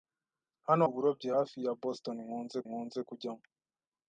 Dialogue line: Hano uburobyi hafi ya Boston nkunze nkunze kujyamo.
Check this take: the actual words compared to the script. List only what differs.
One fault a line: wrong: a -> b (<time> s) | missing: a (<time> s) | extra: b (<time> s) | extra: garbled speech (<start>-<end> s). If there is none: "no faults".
no faults